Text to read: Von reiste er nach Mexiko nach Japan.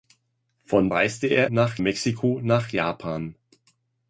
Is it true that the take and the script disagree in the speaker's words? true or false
false